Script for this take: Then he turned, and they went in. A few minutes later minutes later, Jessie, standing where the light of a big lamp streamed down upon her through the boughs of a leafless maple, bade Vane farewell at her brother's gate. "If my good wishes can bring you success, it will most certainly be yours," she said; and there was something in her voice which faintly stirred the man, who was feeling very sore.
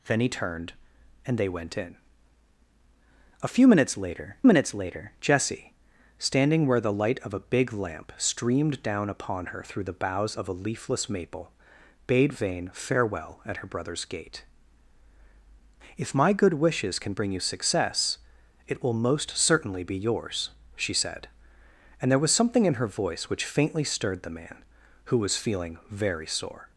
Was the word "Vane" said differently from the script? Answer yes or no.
no